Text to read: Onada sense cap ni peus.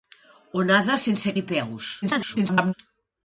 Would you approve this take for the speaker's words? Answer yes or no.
no